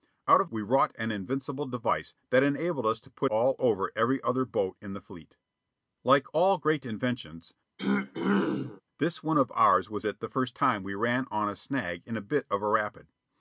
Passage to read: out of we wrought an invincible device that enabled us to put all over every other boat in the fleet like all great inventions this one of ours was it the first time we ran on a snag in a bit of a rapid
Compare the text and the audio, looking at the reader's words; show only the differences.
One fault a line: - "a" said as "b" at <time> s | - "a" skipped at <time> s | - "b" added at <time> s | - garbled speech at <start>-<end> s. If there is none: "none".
none